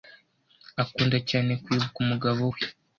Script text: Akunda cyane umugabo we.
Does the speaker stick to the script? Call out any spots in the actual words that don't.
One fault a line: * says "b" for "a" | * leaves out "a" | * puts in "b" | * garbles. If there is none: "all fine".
* puts in "kwibuka"